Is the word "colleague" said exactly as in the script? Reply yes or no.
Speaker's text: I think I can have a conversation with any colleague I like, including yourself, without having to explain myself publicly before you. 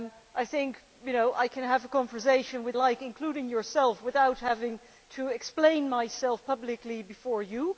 no